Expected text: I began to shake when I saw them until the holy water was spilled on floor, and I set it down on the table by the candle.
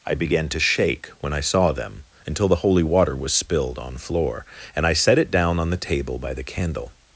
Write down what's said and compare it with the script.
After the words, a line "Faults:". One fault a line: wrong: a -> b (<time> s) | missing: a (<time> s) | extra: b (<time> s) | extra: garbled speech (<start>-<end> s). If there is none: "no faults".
I began to shake when I saw them until the holy water was spilled on floor, and I set it down on the table by the candle.
Faults:
no faults